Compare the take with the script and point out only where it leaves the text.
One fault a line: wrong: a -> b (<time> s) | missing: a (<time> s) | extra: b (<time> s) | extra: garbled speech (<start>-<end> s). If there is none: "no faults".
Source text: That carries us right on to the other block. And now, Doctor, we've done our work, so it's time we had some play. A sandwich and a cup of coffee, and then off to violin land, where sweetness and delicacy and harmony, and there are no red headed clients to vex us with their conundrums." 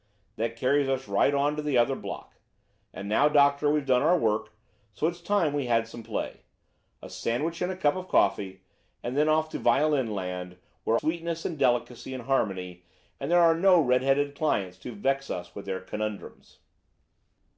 no faults